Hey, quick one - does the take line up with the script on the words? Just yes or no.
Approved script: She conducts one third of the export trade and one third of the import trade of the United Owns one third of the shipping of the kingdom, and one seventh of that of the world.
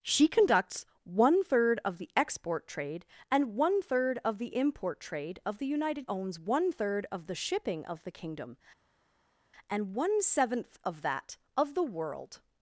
yes